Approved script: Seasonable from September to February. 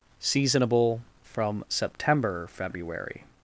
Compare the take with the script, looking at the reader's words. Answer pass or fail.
fail